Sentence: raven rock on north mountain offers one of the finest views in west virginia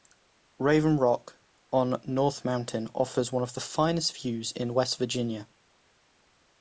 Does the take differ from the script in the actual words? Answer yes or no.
no